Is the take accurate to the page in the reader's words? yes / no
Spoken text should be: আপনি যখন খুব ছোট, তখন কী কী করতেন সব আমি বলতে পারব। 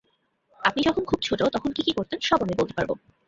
yes